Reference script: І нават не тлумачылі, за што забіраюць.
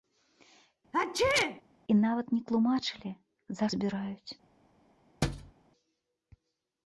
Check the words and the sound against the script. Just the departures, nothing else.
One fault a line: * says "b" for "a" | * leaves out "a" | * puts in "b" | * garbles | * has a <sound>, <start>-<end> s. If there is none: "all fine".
* has a sneeze, 0.9-1.6 s
* leaves out "што"
* has a thud, 5.2-5.5 s